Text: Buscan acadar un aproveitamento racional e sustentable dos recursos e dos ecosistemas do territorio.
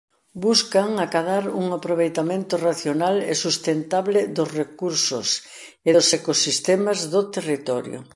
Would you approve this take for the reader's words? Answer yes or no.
yes